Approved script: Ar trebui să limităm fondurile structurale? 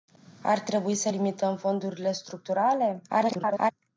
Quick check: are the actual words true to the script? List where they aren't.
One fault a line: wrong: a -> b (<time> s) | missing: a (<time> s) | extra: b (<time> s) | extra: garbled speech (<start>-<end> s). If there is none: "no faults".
extra: garbled speech (3.1-3.7 s)